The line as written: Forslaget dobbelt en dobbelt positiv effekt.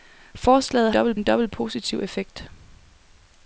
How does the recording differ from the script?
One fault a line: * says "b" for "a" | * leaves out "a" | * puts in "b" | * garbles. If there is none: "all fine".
all fine